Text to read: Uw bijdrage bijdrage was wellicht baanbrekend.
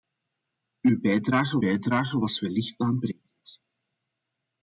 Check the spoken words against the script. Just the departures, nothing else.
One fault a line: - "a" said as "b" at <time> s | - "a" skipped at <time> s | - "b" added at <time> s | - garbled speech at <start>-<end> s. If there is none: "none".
none